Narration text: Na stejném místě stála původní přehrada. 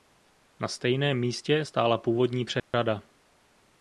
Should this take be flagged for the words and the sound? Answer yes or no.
yes